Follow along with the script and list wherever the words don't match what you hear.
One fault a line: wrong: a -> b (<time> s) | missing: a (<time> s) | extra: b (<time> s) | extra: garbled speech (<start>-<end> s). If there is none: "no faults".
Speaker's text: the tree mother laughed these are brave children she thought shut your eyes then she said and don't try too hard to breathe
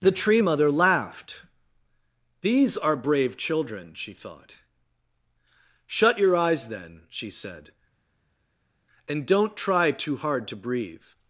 no faults